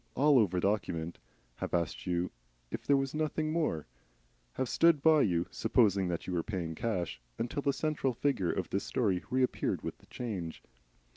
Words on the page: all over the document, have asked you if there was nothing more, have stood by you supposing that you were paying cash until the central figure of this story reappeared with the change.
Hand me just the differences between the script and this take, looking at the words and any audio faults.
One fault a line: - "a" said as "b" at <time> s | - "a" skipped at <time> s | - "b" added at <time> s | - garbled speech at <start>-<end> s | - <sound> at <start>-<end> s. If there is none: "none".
- "the" skipped at 0.6 s